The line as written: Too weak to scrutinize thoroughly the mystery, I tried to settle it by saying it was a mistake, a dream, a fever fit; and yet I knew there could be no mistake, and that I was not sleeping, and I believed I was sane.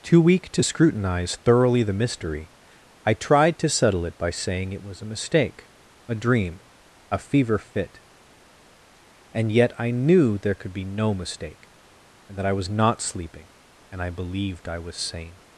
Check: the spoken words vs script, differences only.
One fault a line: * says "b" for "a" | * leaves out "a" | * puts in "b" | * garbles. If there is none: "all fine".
all fine